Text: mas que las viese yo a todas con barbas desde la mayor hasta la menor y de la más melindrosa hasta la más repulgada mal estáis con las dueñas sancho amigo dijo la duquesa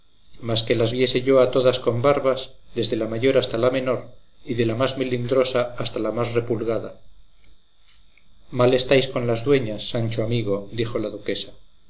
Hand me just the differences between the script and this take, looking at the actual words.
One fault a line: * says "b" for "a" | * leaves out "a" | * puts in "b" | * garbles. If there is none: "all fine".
all fine